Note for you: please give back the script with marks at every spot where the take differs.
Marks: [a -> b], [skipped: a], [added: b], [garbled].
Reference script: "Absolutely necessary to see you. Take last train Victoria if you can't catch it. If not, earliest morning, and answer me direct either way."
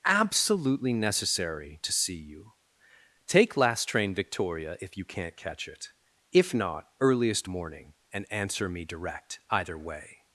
"Absolutely necessary to see you. Take last train Victoria if you can't catch it. If not, earliest morning, and answer me direct either way."